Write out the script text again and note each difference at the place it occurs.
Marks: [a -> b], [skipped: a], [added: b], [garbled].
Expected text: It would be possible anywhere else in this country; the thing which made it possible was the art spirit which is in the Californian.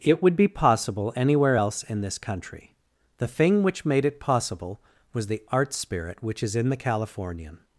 It would be possible anywhere else in this country; the thing which made it possible was the art spirit which is in the Californian.